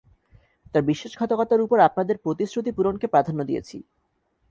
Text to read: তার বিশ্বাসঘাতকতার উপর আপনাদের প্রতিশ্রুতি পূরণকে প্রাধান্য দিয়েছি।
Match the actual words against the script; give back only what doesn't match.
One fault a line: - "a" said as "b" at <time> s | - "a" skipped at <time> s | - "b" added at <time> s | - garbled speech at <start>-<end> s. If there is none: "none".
none